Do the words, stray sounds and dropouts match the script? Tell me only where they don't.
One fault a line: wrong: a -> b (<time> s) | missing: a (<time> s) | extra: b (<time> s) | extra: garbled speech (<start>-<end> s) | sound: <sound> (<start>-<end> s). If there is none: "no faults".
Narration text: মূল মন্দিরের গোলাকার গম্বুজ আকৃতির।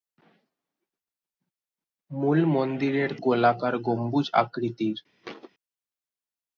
sound: thud (5.2-5.5 s)